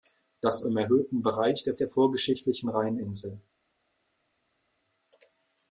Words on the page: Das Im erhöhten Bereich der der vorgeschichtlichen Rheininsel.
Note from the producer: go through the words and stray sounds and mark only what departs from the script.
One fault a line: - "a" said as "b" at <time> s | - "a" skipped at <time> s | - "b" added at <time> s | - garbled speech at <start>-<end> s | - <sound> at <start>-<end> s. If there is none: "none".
none